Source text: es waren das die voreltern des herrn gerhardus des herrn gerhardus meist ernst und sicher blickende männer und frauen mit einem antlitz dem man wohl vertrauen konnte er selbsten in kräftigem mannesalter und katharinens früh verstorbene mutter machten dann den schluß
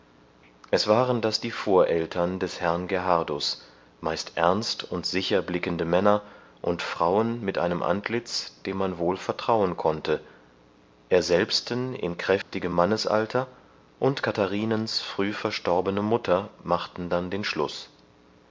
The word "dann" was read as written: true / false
true